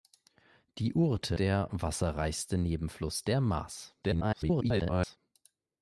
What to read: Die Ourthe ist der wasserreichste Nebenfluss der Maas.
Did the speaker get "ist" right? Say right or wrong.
wrong